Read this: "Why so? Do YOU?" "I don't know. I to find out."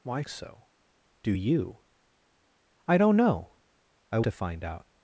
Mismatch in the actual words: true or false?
false